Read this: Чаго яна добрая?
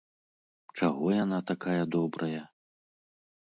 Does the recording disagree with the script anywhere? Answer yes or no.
yes